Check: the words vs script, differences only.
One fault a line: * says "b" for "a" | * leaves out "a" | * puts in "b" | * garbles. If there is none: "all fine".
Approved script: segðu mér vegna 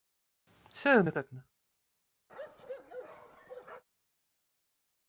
all fine